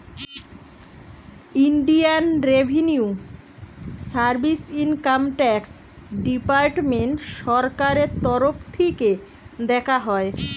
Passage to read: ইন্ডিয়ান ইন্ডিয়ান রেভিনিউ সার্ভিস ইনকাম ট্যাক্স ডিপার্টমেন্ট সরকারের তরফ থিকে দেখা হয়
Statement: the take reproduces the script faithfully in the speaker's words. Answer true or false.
false